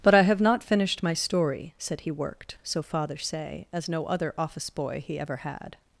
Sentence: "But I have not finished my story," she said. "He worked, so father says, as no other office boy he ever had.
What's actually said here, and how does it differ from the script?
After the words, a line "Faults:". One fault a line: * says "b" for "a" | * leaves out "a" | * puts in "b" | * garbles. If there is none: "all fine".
"But I have not finished my story," said. "He worked, so father say, as no other office boy he ever had.
Faults:
* leaves out "she"
* says "say" for "says"